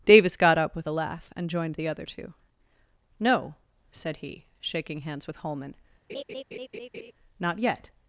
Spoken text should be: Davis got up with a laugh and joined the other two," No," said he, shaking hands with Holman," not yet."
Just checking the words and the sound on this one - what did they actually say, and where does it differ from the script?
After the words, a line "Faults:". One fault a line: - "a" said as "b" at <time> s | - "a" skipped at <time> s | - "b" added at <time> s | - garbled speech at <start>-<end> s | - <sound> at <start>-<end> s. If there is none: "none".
Davis got up with a laugh and joined the other two," No," said he, shaking hands with Holman," not yet."
Faults:
- laugh at 6.1-7.1 s